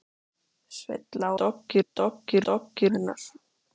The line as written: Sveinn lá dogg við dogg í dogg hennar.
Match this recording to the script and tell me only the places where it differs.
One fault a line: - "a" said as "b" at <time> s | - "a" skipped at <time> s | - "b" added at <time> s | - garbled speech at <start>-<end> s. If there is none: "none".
none